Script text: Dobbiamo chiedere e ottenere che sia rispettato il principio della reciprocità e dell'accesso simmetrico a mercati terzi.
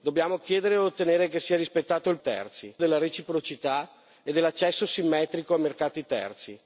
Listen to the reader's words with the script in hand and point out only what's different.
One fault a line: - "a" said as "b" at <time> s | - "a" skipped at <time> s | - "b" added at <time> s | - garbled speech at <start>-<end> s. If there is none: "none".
- "principio" said as "terzi" at 2.2 s